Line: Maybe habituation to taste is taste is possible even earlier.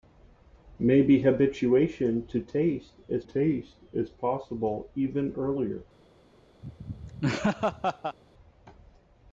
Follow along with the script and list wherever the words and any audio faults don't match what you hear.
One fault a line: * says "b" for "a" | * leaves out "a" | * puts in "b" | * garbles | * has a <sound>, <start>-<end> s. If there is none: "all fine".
* has a laugh, 6.6-8.2 s